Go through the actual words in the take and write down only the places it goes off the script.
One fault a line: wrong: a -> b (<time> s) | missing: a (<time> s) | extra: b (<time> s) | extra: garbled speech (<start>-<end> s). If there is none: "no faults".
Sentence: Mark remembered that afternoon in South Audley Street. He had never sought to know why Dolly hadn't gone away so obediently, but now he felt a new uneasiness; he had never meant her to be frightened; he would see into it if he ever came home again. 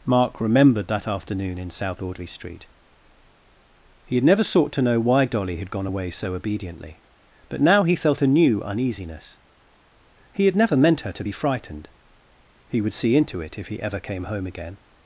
wrong: hadn't -> had (5.6 s)